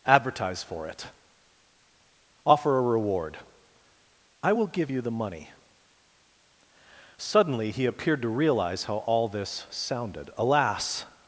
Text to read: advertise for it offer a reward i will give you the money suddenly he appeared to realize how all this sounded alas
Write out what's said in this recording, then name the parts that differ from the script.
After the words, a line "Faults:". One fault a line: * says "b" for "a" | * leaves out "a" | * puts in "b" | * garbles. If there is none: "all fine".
advertise for it offer a reward i will give you the money suddenly he appeared to realize how all this sounded alas
Faults:
all fine